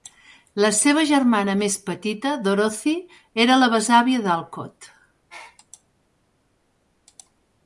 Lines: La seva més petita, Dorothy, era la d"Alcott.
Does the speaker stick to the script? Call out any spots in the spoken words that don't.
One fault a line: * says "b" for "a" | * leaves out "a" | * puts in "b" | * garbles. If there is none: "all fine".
* puts in "germana"
* puts in "besàvia"